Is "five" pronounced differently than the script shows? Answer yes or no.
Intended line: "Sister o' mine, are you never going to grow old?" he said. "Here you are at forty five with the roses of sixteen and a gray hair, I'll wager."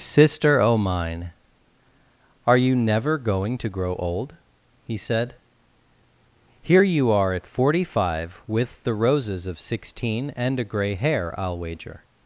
no